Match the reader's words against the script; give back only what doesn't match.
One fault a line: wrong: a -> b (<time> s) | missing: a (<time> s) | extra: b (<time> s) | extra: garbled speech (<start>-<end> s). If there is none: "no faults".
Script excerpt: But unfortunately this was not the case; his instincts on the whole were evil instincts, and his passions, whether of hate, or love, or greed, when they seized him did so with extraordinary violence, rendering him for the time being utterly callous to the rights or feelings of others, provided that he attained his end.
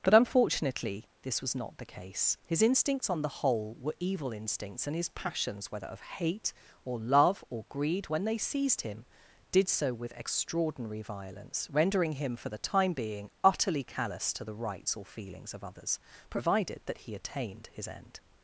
no faults